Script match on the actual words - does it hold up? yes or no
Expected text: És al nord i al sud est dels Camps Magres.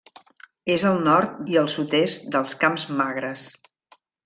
yes